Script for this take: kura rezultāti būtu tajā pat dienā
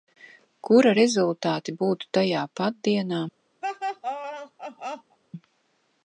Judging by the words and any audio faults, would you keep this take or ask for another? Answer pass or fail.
fail